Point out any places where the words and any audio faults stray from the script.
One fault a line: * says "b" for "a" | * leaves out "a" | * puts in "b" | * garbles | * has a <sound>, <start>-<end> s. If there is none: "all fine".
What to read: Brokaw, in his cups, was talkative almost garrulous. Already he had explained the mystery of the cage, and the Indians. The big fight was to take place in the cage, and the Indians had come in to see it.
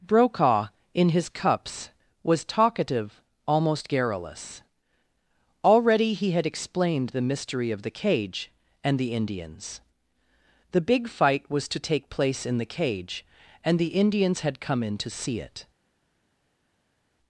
all fine